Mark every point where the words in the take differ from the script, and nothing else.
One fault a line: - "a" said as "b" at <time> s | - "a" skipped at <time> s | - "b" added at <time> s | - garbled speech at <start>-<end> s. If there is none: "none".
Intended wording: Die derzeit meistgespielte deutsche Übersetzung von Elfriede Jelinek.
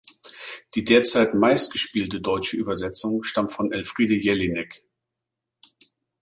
- "stammt" added at 3.2 s